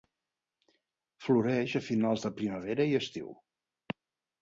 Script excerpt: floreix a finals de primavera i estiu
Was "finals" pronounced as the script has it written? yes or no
yes